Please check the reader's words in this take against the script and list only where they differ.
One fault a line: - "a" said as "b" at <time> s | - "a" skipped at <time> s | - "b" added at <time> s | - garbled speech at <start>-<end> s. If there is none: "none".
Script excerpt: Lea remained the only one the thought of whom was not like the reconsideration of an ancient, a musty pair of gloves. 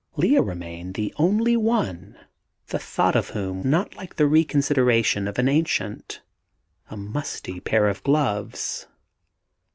- "was" skipped at 3.6 s